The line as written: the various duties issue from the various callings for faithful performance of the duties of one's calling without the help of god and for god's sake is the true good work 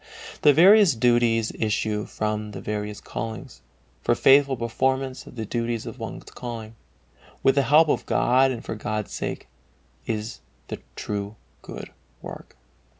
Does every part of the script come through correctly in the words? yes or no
no